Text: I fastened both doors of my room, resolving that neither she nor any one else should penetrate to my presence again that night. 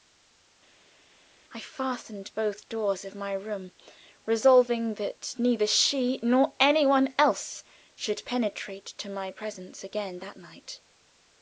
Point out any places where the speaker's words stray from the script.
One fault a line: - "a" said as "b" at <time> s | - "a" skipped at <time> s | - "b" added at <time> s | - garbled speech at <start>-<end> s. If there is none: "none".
none